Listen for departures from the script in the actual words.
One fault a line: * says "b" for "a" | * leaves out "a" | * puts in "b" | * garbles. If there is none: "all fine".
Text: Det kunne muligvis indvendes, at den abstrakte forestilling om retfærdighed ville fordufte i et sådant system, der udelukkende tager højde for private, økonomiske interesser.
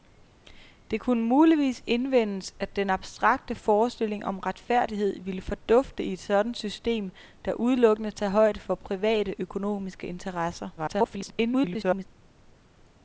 * garbles